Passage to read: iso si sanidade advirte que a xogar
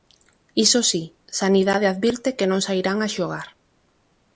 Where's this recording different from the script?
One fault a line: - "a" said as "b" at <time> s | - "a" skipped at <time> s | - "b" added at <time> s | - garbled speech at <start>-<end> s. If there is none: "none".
- "non sairán" added at 2.5 s